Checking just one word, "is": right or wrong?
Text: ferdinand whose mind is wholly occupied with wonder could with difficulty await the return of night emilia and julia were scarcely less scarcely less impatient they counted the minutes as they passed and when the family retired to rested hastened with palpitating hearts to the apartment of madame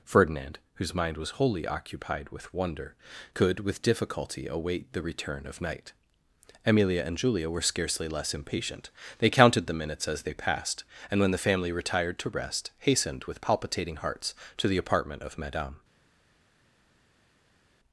wrong